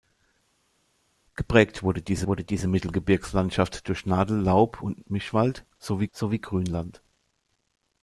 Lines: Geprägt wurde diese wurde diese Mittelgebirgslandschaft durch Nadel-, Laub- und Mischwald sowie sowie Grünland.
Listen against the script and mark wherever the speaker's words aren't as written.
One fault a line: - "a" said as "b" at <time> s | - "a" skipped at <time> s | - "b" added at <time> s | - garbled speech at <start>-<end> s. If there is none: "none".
none